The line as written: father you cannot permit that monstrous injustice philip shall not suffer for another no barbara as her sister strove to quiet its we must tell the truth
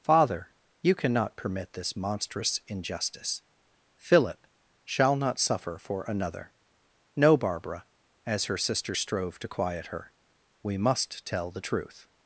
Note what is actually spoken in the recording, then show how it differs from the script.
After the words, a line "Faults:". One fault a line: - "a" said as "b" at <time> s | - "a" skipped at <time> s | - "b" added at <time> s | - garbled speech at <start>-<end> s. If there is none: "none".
father you cannot permit this monstrous injustice philip shall not suffer for another no barbara as her sister strove to quiet her we must tell the truth
Faults:
- "that" said as "this" at 1.7 s
- "its" said as "her" at 9.9 s